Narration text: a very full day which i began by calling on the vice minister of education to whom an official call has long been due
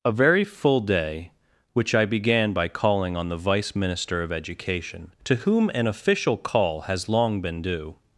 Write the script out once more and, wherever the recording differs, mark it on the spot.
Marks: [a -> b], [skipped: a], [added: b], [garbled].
a very full day which i began by calling on the vice minister of education to whom an official call has long been due